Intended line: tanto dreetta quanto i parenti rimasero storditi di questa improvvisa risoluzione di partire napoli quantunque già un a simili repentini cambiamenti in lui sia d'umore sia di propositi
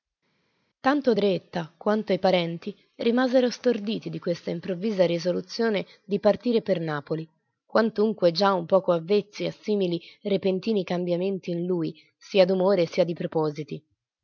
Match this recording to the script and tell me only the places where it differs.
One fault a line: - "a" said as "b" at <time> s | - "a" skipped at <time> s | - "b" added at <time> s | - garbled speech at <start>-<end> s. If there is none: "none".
- "per" added at 6.6 s
- "poco avvezzi" added at 8.6 s